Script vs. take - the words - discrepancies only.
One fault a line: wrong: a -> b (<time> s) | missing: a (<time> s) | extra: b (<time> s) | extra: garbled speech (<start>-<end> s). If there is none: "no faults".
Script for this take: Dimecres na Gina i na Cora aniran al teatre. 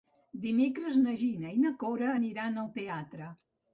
no faults